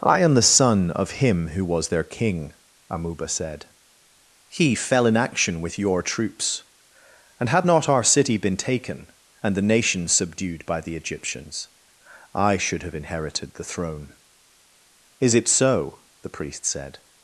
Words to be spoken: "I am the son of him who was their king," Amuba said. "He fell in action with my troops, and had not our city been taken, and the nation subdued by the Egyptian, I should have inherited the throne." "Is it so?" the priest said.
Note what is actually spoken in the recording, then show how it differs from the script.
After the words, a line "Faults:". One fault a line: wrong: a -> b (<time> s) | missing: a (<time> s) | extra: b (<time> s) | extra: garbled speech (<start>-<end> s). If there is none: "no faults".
"I am the son of him who was their king," Amuba said. "He fell in action with your troops, and had not our city been taken, and the nation subdued by the Egyptians, I should have inherited the throne." "Is it so?" the priest said.
Faults:
wrong: my -> your (5.8 s)
wrong: Egyptian -> Egyptians (11.0 s)